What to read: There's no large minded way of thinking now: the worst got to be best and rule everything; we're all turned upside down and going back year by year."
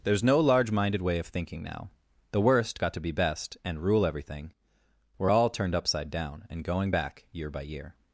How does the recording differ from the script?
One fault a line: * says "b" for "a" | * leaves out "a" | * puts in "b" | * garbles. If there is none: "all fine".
all fine